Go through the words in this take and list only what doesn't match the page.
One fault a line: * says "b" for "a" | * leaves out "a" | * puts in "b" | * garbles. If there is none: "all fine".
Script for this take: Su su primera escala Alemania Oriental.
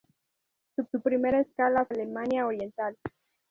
all fine